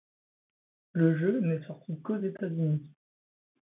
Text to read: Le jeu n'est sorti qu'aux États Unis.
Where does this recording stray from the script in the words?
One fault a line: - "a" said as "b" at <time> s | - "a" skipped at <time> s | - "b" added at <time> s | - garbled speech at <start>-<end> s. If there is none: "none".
none